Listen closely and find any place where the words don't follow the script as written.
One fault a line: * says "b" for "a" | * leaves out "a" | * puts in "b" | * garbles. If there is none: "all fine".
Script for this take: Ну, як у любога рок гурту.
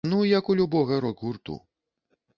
all fine